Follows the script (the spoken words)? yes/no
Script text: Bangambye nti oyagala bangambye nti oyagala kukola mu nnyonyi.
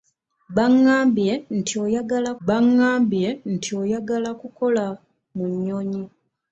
yes